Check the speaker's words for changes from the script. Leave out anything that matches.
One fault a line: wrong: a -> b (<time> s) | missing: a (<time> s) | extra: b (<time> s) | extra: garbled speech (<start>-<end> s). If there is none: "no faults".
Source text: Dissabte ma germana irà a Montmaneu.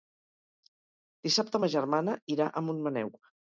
no faults